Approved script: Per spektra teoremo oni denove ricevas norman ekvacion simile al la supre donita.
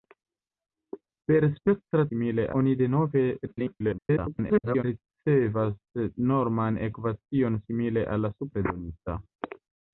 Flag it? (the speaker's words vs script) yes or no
yes